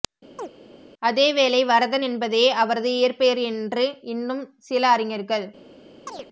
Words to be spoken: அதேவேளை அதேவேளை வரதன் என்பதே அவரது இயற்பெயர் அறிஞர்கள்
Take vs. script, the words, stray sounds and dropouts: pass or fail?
fail